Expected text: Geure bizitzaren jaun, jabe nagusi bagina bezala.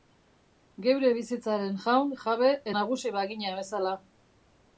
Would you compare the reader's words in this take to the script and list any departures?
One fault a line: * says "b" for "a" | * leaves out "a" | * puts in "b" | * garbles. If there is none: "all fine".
all fine